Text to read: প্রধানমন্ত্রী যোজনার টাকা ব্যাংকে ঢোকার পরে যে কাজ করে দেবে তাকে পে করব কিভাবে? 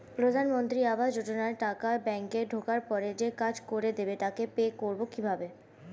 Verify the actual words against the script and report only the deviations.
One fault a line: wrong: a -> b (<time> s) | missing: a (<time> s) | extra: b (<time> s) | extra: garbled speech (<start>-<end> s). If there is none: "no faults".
extra: আবাস (0.8 s)